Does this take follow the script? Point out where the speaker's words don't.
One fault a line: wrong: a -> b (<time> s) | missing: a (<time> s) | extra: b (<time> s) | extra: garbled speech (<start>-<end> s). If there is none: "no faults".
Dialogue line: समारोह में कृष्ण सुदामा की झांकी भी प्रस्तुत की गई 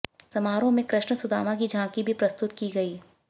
no faults